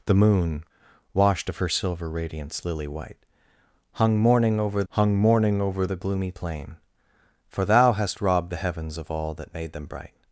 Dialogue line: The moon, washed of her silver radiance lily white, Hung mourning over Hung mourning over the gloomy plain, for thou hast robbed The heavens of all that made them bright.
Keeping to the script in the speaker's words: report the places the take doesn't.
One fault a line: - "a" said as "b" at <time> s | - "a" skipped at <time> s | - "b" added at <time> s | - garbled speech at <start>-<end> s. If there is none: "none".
none